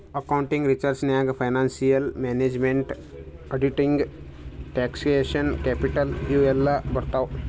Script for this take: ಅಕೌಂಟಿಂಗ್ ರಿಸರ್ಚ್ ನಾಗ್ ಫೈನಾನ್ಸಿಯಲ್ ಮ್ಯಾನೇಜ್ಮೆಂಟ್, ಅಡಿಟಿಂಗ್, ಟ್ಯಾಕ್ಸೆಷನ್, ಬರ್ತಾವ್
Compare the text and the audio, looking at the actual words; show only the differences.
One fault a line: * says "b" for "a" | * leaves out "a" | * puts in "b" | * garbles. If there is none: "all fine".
* puts in "ಕ್ಯಾಪಿಟಲ್ ಇವು ಎಲ್ಲಾ"